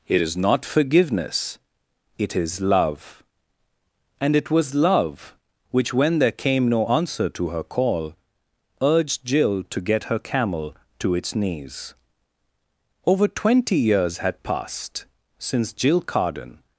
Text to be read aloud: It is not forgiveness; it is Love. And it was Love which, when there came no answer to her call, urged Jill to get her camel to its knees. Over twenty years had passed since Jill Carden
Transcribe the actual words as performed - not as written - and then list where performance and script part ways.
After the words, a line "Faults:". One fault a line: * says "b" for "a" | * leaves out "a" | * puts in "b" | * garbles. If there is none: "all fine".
It is not forgiveness; it is Love. And it was Love which, when there came no answer to her call, urged Jill to get her camel to its knees. Over twenty years had passed since Jill Carden
Faults:
all fine